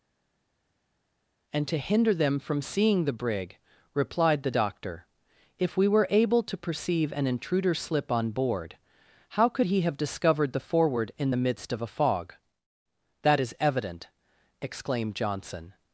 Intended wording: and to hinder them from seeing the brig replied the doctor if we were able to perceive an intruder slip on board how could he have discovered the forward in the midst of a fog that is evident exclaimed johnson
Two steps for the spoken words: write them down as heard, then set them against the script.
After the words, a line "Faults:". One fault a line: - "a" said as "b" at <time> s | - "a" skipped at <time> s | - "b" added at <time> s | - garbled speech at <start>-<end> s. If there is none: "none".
and to hinder them from seeing the brig replied the doctor if we were able to perceive an intruder slip on board how could he have discovered the forward in the midst of a fog that is evident exclaimed johnson
Faults:
none